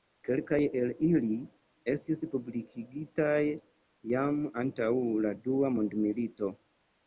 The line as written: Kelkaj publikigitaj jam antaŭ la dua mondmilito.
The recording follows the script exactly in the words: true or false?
false